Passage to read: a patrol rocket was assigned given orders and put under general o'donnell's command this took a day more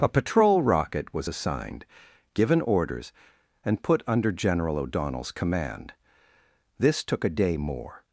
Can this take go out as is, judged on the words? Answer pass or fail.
pass